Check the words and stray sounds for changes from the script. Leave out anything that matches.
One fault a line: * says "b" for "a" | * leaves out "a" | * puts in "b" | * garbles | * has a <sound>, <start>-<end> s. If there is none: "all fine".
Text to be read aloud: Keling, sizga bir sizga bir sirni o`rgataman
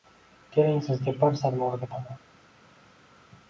* leaves out "sizga bir"